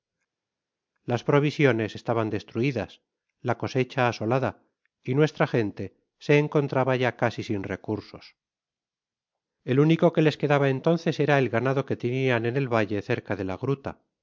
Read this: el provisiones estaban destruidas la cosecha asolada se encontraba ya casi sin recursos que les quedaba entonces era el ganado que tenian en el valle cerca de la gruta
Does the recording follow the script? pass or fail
fail